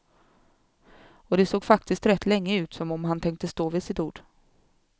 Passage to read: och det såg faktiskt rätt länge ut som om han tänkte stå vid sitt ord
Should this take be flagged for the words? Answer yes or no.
no